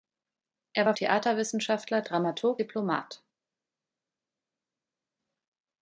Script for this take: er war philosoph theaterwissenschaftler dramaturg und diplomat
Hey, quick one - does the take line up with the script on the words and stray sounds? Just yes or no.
no